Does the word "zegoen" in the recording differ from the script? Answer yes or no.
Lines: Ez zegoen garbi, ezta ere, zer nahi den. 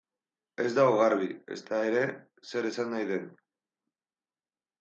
yes